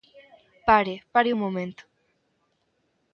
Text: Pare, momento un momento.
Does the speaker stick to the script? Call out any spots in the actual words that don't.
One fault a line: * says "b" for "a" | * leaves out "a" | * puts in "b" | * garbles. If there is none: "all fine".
* says "pare" for "momento"